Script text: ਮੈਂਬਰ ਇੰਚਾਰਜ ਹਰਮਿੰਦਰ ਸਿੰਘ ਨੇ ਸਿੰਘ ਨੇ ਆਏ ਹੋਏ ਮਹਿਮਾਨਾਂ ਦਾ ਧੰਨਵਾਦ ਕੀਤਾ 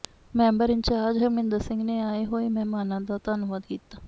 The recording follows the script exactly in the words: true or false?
false